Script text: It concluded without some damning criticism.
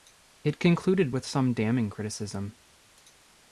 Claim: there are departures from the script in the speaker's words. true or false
true